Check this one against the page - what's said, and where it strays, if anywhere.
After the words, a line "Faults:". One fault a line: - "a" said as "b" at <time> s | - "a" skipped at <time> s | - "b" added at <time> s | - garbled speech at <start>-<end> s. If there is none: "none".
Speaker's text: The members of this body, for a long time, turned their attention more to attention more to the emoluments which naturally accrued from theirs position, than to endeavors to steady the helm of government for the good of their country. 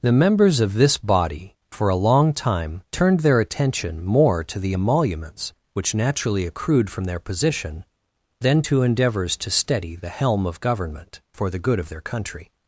The members of this body, for a long time, turned their attention more to the emoluments which naturally accrued from their position, than to endeavors to steady the helm of government for the good of their country.
Faults:
- "attention more to" skipped at 4.6 s
- "theirs" said as "their" at 7.0 s